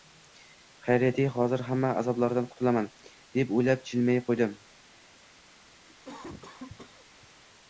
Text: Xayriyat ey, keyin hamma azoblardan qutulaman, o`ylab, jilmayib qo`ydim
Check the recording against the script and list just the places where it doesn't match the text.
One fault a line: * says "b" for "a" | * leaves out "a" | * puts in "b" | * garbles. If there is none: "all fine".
* says "hozir" for "keyin"
* puts in "deb"